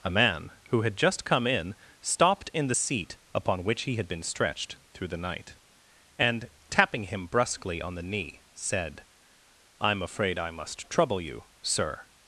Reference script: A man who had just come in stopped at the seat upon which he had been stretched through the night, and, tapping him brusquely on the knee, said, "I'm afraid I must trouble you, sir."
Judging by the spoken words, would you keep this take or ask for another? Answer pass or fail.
fail